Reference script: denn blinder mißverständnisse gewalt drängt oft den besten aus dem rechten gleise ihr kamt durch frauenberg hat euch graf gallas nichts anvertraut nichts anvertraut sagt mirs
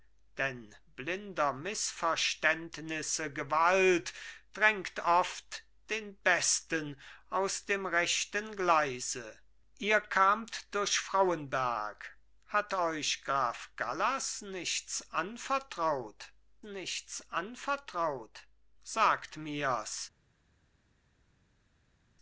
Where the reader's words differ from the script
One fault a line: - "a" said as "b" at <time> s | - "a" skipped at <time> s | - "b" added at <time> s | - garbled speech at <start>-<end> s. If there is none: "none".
none